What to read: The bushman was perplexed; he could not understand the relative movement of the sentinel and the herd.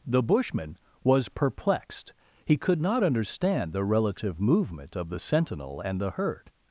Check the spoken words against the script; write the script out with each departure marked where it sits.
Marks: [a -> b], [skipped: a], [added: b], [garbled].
The bushman was perplexed; he could not understand the relative movement of the sentinel and the herd.